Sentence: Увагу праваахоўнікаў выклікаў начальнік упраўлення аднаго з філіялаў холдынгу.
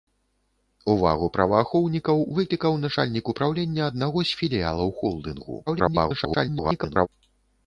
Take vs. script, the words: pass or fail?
fail